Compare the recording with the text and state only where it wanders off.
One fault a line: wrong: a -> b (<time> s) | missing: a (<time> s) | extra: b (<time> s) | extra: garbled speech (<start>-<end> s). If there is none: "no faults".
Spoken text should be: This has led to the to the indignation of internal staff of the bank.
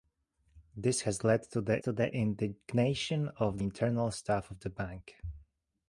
no faults